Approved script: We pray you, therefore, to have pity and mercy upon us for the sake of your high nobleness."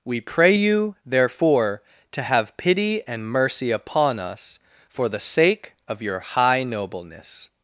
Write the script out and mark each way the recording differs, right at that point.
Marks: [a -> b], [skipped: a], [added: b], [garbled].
We pray you, therefore, to have pity and mercy upon us for the sake of your high nobleness."